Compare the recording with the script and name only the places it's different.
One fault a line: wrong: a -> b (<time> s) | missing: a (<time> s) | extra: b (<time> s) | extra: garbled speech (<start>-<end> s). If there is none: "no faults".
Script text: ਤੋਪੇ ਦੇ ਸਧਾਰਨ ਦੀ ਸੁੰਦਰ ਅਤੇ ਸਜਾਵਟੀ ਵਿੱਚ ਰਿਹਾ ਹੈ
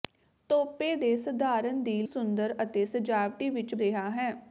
no faults